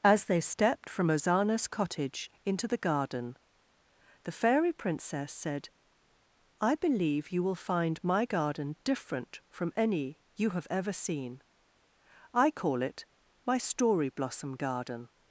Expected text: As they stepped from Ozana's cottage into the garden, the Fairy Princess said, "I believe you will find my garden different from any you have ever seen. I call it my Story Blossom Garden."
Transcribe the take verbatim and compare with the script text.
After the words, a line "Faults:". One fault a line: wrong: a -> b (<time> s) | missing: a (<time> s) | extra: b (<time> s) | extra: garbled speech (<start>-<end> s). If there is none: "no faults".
As they stepped from Ozana's cottage into the garden, the Fairy Princess said, "I believe you will find my garden different from any you have ever seen. I call it my Story Blossom Garden."
Faults:
no faults